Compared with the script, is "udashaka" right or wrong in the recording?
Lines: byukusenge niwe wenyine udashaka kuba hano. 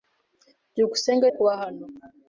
wrong